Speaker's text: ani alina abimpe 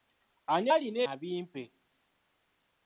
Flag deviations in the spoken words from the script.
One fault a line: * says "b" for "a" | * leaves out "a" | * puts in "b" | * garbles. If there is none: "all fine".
all fine